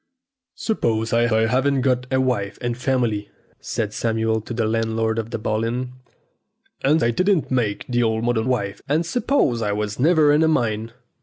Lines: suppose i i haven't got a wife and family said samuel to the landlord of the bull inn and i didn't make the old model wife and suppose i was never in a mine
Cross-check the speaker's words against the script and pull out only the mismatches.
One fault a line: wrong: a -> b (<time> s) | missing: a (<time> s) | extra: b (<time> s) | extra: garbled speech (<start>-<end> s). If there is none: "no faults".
no faults